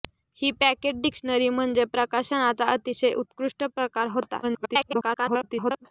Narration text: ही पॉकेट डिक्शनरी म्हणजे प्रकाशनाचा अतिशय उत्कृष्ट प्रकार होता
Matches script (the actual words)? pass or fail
fail